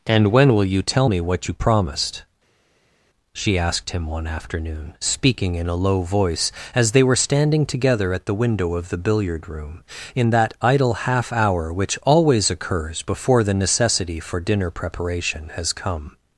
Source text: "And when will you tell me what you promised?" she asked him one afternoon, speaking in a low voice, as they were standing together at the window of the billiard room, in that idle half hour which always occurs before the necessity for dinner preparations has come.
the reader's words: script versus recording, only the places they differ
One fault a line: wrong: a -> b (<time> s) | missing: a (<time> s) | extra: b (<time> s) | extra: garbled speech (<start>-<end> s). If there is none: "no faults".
wrong: preparations -> preparation (14.7 s)